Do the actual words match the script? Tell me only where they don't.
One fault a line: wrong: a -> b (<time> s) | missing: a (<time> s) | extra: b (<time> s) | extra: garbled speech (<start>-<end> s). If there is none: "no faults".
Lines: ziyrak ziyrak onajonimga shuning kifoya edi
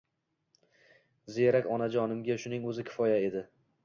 missing: ziyrak (1.7 s)
extra: o‘zi (2.7 s)